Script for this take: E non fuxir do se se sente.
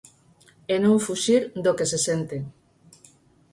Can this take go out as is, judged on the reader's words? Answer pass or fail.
fail